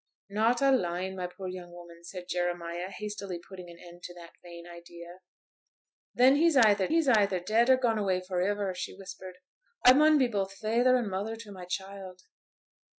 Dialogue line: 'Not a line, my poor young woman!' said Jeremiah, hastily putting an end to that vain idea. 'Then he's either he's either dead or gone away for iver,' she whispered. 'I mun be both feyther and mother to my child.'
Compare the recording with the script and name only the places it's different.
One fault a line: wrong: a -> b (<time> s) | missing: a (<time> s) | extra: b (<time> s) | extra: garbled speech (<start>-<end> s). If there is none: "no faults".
no faults